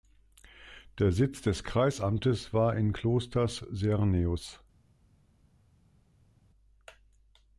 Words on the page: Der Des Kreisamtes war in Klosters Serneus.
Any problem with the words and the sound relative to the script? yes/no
yes